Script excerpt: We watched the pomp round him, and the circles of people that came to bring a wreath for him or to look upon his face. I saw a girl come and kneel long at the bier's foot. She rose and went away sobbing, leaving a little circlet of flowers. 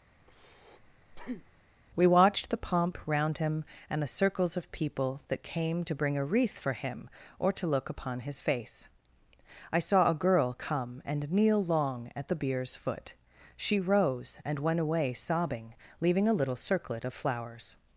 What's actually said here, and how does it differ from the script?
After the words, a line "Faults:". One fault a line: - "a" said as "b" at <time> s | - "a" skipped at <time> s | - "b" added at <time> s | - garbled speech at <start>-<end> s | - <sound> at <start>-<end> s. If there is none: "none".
We watched the pomp round him, and the circles of people that came to bring a wreath for him or to look upon his face. I saw a girl come and kneel long at the bier's foot. She rose and went away sobbing, leaving a little circlet of flowers.
Faults:
- breath at 0.2-1.7 s